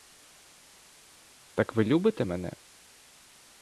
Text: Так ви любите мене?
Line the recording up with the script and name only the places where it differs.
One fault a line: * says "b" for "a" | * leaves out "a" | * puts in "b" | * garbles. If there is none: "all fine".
all fine